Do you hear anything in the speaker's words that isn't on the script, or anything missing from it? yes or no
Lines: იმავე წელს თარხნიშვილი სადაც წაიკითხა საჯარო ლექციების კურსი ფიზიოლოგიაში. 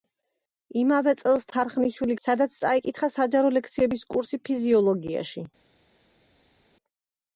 no